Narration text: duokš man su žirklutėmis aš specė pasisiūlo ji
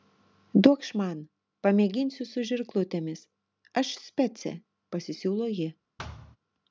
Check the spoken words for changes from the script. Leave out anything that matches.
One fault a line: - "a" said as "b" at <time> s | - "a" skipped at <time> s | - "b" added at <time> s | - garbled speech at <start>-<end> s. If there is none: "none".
- "pamėginsiu" added at 1.7 s